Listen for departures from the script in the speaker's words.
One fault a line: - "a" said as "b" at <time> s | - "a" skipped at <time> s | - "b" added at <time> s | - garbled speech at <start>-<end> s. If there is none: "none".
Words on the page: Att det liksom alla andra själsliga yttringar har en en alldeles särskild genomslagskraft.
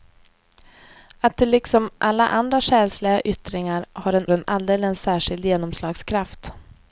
none